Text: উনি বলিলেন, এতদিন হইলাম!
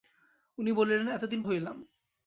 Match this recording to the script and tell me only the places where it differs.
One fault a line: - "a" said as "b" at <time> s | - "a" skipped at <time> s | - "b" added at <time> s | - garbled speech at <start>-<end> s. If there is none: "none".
none